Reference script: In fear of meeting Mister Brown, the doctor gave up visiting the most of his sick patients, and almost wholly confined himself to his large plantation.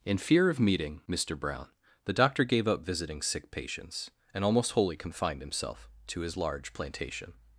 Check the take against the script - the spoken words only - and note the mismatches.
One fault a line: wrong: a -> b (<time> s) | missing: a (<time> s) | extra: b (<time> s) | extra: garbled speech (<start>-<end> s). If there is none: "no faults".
missing: the most of his (3.2 s)